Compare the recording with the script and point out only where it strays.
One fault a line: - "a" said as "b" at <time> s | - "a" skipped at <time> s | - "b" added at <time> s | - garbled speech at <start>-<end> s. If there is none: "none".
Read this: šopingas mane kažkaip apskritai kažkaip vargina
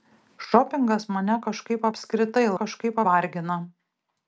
none